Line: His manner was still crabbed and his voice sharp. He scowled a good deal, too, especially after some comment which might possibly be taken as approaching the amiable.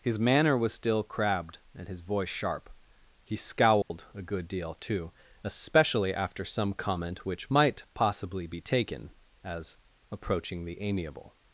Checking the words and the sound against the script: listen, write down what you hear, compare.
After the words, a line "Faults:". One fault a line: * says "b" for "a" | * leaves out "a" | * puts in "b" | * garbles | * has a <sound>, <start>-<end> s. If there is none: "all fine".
His manner was still crabbed and his voice sharp. He scowled a good deal, too, especially after some comment which might possibly be taken as approaching the amiable.
Faults:
* has a dropout, 3.8-3.9 s